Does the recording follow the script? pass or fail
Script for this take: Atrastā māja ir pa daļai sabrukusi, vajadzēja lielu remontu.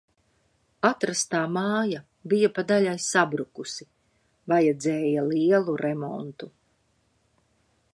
fail